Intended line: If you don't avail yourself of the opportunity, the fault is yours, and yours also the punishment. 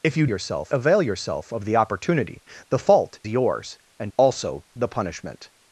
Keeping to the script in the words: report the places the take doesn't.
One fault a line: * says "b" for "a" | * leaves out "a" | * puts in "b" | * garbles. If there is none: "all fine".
* says "yourself" for "don't"
* leaves out "is"
* leaves out "yours"